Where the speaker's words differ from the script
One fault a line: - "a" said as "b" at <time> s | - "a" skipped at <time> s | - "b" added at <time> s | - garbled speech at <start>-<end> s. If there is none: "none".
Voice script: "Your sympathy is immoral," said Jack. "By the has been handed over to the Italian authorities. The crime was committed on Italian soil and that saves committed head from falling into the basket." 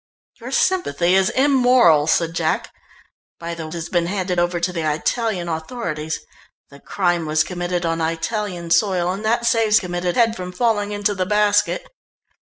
none